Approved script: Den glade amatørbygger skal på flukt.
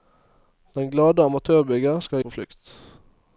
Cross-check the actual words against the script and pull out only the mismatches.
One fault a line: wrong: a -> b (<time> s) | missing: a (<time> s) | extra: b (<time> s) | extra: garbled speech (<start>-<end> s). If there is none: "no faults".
no faults